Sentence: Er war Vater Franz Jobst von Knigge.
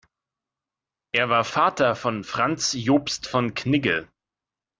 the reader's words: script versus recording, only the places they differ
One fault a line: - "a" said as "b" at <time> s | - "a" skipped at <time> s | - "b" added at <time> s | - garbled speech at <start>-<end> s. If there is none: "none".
- "von" added at 1.9 s